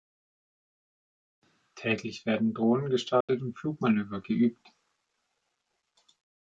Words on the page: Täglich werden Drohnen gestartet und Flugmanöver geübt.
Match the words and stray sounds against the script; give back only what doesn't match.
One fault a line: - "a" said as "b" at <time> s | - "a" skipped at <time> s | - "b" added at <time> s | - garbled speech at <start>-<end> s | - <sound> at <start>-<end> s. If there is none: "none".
- dropout at 3.2-3.3 s